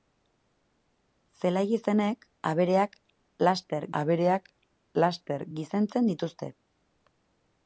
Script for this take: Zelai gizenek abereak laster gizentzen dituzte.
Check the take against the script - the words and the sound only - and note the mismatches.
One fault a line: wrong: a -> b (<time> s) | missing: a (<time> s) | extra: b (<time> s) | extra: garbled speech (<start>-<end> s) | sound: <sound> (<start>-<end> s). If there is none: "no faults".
extra: abereak laster (4.0 s)